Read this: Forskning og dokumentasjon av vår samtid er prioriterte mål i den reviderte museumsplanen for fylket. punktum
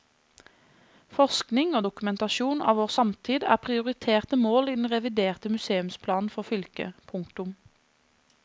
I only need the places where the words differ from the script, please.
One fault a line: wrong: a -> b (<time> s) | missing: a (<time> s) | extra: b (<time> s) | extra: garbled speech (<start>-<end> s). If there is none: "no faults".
no faults